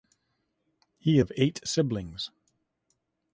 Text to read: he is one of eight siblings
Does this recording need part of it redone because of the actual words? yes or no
yes